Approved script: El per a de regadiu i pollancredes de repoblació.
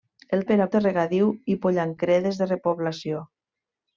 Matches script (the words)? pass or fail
pass